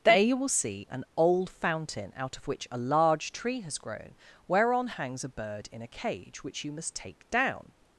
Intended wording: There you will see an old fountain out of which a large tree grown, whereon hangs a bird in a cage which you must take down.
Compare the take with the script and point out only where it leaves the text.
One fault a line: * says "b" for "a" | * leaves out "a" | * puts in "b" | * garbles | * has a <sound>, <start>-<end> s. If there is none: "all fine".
* puts in "has"